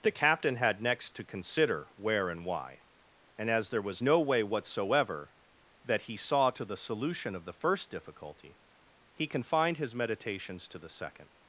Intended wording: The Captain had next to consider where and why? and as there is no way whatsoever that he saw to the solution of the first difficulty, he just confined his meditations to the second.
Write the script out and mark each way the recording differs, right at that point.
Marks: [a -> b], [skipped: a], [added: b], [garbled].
The Captain had next to consider where and why? and as there [is -> was] no way whatsoever that he saw to the solution of the first difficulty, he [skipped: just] confined his meditations to the second.